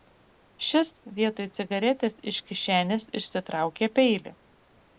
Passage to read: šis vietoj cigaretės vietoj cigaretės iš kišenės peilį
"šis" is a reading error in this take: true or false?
false